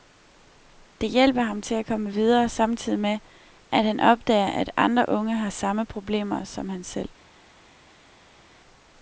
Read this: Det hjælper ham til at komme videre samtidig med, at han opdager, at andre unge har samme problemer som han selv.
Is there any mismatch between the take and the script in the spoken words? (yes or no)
no